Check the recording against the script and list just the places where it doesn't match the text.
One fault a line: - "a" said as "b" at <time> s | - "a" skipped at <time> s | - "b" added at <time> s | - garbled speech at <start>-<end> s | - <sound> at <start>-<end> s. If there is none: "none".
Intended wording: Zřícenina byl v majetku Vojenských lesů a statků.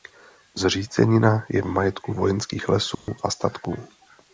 - "byl" said as "je" at 1.5 s
- dropout at 2.9-3.1 s